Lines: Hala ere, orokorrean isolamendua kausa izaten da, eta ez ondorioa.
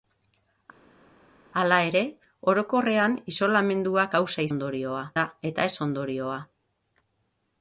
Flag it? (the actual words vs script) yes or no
yes